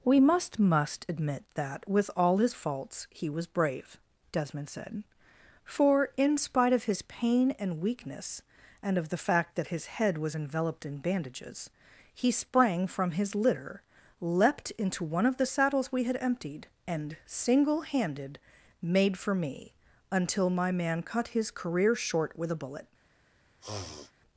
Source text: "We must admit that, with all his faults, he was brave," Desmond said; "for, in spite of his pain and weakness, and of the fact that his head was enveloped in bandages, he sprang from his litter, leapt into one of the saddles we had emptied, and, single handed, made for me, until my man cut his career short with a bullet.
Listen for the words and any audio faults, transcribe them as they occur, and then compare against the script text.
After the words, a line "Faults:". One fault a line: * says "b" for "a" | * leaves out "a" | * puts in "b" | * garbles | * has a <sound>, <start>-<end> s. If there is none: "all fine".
"We must must admit that, with all his faults, he was brave," Desmond said; "for, in spite of his pain and weakness, and of the fact that his head was enveloped in bandages, he sprang from his litter, leapt into one of the saddles we had emptied, and, single handed, made for me, until my man cut his career short with a bullet.
Faults:
* puts in "must"
* has a sniff, 23.6-24.1 s